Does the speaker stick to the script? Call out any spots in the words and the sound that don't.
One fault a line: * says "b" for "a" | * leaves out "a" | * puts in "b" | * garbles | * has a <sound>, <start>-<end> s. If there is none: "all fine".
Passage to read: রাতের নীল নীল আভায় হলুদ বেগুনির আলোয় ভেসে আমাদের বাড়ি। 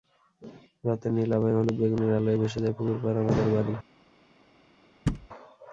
* leaves out "নীল"
* puts in "যায় পুকুর পাড়"
* has a thud, 5.1-5.3 s